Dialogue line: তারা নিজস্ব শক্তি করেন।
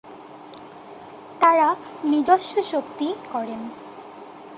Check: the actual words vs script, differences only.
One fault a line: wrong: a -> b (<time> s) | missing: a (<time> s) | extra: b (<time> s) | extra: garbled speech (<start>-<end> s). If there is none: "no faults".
no faults